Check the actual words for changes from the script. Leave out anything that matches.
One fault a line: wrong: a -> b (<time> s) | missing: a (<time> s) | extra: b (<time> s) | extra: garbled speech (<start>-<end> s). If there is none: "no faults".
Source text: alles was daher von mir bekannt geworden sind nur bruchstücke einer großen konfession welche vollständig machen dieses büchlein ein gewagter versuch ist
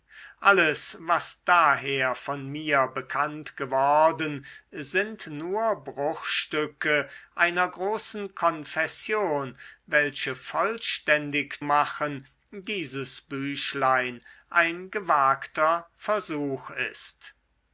no faults